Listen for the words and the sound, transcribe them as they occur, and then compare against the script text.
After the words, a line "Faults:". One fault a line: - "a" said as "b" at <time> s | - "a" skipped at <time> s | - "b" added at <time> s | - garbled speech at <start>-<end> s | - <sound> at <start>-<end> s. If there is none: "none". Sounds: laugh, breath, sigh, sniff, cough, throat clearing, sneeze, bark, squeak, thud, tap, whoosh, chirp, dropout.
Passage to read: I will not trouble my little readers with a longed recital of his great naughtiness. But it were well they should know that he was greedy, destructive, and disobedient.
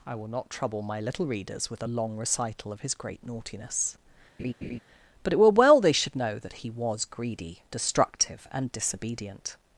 I will not trouble my little readers with a long recital of his great naughtiness. But it were well they should know that he was greedy, destructive, and disobedient.
Faults:
- "longed" said as "long" at 1.8 s
- laugh at 4.4-4.8 s